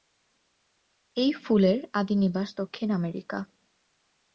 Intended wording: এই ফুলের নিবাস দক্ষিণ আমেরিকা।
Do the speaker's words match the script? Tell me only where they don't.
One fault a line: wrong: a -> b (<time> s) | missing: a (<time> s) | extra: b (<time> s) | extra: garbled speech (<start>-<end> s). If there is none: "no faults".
extra: আদি (1.9 s)